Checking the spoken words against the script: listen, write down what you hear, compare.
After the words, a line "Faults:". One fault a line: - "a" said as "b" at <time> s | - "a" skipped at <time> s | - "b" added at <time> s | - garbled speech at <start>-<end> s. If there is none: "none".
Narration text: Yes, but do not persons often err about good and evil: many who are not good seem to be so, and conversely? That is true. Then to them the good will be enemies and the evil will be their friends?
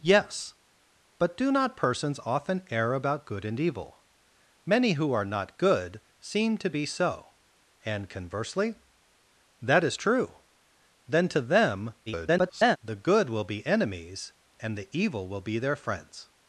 Yes, but do not persons often err about good and evil: many who are not good seem to be so, and conversely? That is true. Then to them [garbled] the good will be enemies and the evil will be their friends?
Faults:
- garbled speech at 12.1-12.8 s